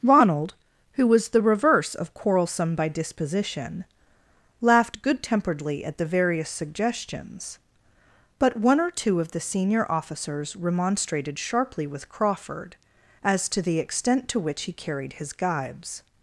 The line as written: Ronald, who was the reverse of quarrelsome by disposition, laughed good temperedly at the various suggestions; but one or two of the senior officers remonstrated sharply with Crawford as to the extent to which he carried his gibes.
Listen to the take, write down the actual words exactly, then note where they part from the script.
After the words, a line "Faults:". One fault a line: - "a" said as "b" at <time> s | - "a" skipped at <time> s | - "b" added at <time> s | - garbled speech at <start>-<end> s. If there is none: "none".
Ronald, who was the reverse of quarrelsome by disposition, laughed good temperedly at the various suggestions; but one or two of the senior officers remonstrated sharply with Crawford as to the extent to which he carried his gibes.
Faults:
none